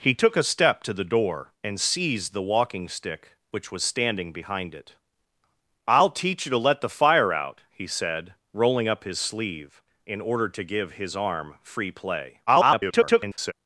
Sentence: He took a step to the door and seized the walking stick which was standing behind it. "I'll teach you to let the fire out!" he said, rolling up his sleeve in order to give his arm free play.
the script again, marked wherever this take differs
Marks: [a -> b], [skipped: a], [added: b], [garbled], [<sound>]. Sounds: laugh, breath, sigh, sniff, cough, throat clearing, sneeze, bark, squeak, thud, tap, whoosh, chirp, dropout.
He took a step to the door and seized the walking stick which was standing behind it. "I'll teach you to let the fire out!" he said, rolling up his sleeve in order to give his arm free play. [garbled]